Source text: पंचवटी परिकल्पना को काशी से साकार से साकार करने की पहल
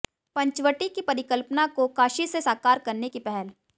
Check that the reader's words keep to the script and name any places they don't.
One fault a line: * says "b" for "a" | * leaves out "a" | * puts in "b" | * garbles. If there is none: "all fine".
* puts in "की"
* leaves out "से साकार"